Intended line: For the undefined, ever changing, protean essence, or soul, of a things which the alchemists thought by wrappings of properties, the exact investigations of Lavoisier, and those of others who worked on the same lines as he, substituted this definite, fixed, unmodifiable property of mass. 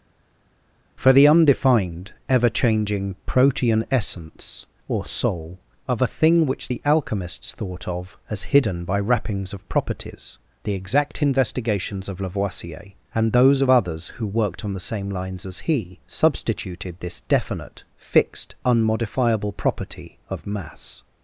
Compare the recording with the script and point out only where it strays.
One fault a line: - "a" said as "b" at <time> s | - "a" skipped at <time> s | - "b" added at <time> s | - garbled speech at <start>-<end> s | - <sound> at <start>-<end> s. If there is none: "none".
- "things" said as "thing" at 6.1 s
- "of as hidden" added at 7.9 s